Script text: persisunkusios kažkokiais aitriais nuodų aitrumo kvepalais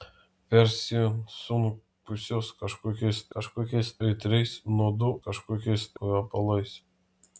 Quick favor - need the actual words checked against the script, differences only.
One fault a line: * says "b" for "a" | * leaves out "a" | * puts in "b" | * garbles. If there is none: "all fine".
* puts in "kažkokiais"
* says "kažkokiais" for "aitrumo"